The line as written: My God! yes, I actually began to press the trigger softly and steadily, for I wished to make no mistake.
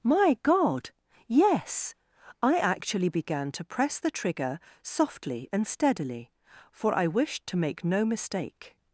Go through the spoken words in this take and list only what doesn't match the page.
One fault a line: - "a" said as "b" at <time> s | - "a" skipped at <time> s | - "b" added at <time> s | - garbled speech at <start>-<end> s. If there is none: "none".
none